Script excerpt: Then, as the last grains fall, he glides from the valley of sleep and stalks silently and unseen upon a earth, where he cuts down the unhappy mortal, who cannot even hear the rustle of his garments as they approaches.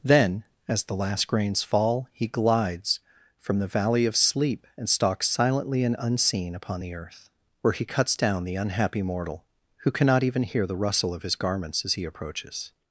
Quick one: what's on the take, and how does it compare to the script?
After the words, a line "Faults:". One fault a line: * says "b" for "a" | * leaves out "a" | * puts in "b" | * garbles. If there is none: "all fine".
Then, as the last grains fall, he glides from the valley of sleep and stalks silently and unseen upon the earth, where he cuts down the unhappy mortal, who cannot even hear the rustle of his garments as he approaches.
Faults:
* says "the" for "a"
* says "he" for "they"